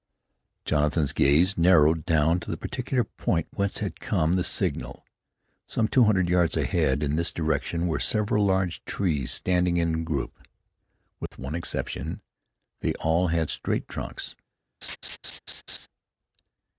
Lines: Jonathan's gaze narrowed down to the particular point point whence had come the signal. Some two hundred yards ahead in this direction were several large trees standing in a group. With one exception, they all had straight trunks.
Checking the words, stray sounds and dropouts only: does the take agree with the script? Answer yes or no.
no